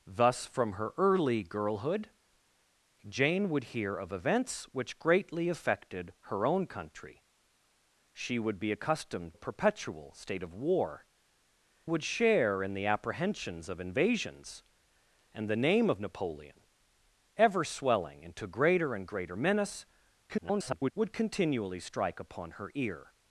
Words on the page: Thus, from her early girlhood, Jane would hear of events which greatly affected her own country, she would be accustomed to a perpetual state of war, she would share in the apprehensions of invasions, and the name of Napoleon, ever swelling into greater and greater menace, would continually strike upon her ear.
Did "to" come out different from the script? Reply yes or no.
yes